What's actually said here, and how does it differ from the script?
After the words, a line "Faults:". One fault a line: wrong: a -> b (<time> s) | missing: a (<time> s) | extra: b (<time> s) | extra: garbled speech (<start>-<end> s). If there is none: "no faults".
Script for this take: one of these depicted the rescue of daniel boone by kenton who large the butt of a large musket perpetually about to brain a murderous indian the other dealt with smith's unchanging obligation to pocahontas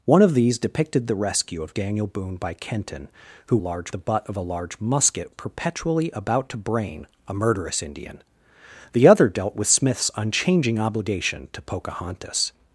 one of these depicted the rescue of daniel boone by kenton who large the butt of a large musket perpetually about to brain a murderous indian the other dealt with smith's unchanging obligation to pocahontas
Faults:
no faults